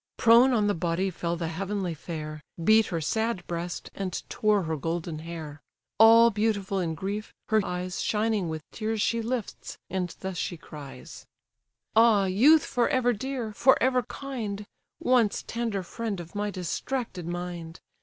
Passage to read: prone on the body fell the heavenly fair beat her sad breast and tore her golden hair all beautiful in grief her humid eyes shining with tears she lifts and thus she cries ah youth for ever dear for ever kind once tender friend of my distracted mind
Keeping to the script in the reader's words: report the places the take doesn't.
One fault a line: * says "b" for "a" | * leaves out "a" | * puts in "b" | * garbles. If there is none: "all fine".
* leaves out "humid"